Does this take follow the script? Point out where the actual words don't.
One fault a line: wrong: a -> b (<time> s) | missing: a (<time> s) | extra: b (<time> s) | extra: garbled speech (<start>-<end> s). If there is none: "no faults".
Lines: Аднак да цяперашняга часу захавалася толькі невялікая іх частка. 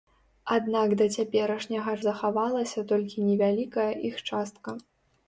missing: часу (1.9 s)